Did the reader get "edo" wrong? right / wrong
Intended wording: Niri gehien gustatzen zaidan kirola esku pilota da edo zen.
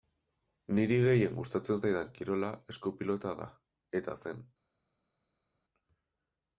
wrong